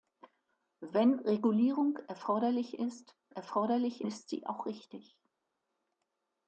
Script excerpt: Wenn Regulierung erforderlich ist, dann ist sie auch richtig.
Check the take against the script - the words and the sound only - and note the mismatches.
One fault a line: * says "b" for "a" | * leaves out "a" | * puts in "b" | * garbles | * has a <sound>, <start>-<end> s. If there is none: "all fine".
* says "erforderlich" for "dann"